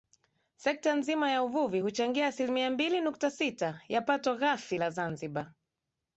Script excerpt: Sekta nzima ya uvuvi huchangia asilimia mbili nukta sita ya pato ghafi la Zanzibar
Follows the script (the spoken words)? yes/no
yes